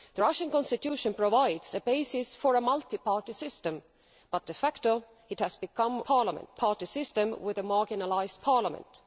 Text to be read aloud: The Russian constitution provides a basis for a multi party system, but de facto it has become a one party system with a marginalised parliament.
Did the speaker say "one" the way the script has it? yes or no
no